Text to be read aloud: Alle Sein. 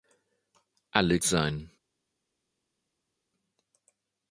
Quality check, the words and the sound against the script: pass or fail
pass